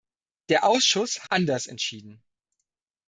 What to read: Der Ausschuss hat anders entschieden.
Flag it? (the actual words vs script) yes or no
yes